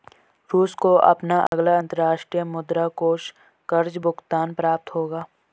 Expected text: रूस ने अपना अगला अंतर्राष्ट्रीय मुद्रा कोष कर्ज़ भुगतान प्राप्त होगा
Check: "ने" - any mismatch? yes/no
yes